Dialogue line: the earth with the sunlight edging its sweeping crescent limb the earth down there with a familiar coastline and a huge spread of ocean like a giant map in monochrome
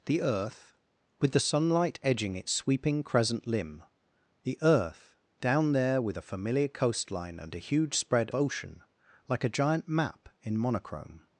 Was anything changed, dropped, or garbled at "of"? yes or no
yes